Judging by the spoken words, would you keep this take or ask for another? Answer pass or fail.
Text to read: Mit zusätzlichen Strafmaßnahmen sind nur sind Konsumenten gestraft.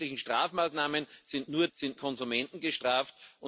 pass